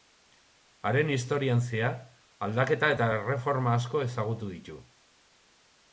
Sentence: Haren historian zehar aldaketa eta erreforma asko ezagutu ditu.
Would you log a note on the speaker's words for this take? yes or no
no